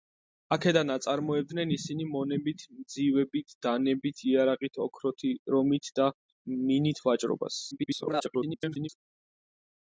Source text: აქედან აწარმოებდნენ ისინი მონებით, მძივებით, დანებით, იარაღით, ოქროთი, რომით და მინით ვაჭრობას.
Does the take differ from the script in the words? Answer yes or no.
yes